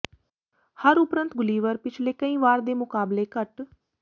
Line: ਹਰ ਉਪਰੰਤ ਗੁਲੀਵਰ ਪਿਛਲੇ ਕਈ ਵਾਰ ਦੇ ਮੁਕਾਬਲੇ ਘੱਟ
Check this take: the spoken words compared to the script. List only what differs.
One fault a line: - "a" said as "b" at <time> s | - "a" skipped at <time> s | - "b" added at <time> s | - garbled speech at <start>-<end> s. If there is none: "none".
none